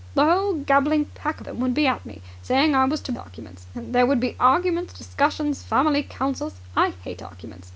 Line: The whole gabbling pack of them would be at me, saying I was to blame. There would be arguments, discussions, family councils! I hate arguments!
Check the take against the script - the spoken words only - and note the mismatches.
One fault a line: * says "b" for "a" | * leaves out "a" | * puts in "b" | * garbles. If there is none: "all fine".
* leaves out "of"
* says "arguments" for "blame"